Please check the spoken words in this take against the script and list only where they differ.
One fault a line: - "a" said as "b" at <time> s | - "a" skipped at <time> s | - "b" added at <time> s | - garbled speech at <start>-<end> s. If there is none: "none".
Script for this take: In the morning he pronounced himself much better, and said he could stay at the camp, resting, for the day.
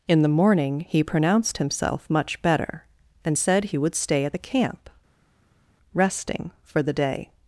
- "could" said as "would" at 3.8 s